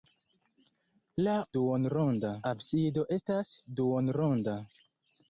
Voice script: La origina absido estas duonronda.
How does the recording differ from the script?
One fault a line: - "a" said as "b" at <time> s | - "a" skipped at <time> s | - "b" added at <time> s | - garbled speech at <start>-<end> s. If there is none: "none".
- "origina" said as "duonronda" at 1.6 s